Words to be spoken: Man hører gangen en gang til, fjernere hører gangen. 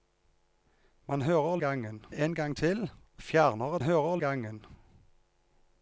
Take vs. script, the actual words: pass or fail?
pass